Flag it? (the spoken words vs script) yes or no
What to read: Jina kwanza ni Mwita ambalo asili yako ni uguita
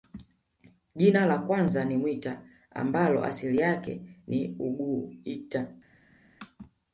yes